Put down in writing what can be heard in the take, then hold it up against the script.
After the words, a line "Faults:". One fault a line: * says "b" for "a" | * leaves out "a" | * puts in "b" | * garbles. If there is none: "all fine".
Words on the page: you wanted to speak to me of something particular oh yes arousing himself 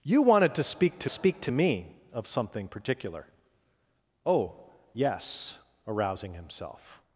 you wanted to speak to speak to me of something particular oh yes arousing himself
Faults:
* puts in "speak to"